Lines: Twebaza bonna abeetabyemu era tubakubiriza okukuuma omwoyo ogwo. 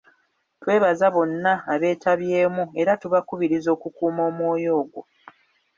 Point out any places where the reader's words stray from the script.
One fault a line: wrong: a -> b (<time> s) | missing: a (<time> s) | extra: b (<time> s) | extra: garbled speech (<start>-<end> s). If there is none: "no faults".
no faults